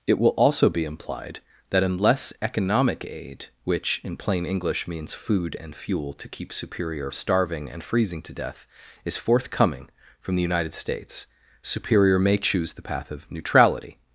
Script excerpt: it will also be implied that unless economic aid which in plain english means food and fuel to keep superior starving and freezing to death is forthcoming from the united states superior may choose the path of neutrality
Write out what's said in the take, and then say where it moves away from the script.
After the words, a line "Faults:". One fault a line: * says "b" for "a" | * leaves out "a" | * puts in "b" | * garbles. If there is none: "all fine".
it will also be implied that unless economic aid which in plain english means food and fuel to keep superior starving and freezing to death is forthcoming from the united states superior may choose the path of neutrality
Faults:
all fine